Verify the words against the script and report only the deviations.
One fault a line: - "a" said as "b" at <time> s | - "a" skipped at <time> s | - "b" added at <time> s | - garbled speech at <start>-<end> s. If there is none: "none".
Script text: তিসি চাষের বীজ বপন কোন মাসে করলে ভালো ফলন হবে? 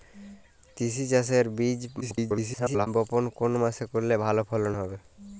- garbled speech at 2.0-2.9 s